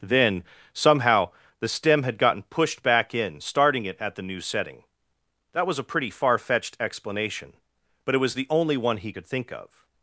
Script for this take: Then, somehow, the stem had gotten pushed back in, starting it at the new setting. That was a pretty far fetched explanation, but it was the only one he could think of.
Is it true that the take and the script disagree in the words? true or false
false